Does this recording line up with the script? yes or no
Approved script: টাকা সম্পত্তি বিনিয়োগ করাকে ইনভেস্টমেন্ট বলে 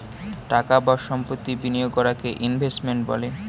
no